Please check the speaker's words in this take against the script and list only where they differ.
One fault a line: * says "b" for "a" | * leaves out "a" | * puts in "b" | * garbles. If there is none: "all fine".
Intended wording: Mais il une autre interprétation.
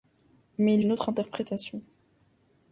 all fine